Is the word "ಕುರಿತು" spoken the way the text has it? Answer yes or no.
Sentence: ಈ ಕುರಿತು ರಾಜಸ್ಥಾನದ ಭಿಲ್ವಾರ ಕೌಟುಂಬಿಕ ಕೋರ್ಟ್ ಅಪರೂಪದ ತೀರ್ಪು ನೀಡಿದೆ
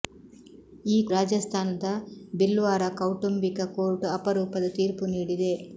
no